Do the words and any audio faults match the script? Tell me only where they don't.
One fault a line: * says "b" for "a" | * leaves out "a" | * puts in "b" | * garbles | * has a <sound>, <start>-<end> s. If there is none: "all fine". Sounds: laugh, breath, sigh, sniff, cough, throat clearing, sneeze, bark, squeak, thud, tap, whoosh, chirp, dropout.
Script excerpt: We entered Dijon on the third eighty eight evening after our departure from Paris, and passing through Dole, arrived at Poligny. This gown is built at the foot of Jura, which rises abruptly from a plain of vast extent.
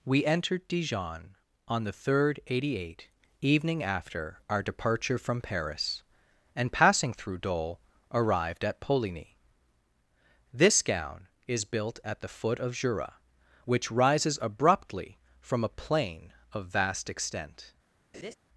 * has a laugh, 18.1-18.3 s